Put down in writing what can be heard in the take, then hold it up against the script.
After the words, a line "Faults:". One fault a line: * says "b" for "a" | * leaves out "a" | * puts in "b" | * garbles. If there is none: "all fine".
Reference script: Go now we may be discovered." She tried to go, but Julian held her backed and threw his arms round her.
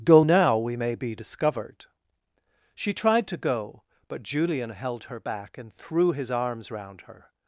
Go now we may be discovered." She tried to go, but Julian held her back and threw his arms round her.
Faults:
* says "back" for "backed"